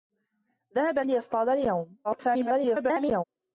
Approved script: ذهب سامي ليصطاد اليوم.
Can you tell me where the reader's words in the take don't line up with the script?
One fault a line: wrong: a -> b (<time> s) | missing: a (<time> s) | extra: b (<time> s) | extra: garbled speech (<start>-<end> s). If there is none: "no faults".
missing: سامي (1.0 s)
extra: garbled speech (2.0-3.2 s)